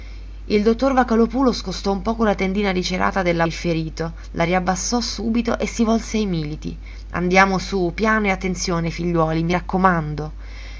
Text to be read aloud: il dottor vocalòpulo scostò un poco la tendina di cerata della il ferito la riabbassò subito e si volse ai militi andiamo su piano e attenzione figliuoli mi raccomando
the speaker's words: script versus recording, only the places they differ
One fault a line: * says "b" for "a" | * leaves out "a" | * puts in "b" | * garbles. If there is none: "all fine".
all fine